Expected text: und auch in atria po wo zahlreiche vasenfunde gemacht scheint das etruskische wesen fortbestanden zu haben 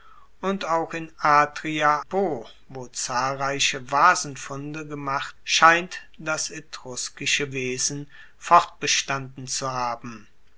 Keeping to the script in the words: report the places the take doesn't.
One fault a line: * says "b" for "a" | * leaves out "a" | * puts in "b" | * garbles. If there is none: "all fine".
all fine